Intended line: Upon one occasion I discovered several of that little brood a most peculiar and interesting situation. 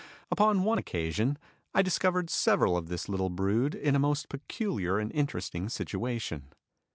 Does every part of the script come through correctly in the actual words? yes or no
no